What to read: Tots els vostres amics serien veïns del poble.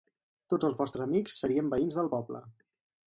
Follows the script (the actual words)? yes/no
yes